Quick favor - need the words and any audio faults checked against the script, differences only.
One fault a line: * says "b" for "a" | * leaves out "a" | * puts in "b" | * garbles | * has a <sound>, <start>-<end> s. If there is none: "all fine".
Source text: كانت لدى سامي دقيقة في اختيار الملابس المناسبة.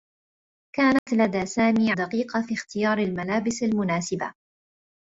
* has a dropout, 1.0-1.1 s